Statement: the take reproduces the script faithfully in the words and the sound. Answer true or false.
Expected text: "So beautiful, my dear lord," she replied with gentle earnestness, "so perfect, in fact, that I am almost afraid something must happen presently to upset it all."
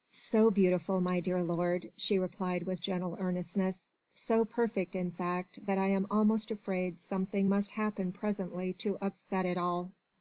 true